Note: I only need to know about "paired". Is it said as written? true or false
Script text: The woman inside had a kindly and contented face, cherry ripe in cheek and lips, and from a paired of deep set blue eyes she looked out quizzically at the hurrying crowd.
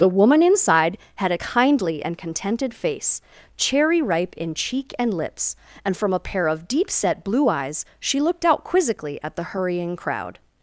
false